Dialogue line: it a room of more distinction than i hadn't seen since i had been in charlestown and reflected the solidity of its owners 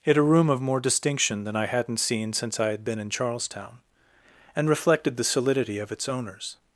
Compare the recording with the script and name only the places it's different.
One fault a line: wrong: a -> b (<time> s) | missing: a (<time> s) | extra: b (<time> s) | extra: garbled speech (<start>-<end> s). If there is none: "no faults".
no faults